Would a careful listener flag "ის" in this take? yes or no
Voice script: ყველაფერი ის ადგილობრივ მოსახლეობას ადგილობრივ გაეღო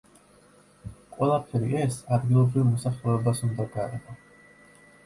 yes